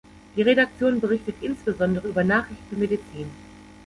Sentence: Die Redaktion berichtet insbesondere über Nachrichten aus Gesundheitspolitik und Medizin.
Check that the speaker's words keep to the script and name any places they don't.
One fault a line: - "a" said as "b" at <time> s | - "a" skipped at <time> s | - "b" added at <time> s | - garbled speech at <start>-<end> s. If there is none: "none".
- "aus Gesundheitspolitik und" skipped at 2.8 s